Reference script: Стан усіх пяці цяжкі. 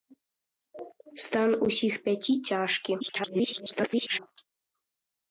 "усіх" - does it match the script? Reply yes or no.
yes